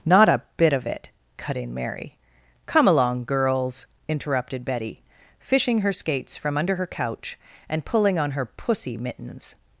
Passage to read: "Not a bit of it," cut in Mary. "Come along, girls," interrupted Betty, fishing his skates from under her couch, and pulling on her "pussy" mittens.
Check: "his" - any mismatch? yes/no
yes